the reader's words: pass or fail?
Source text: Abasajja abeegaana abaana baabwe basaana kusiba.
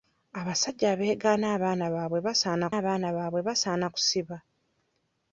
fail